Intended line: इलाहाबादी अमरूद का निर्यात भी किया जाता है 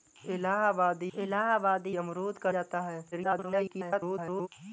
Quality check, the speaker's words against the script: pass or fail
fail